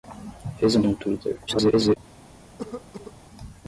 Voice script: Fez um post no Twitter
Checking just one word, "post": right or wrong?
wrong